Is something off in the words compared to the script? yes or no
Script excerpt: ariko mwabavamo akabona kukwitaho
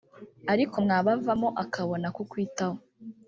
no